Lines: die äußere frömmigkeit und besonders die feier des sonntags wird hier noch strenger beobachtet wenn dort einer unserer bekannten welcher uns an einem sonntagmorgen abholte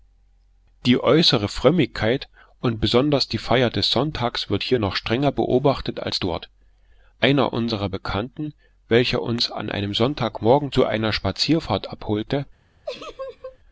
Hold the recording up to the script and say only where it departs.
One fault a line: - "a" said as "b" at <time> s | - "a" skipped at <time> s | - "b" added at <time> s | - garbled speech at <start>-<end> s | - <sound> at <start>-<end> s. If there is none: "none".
- "wenn" said as "als" at 6.0 s
- "zu einer spazierfahrt" added at 10.7 s
- laugh at 12.9-13.6 s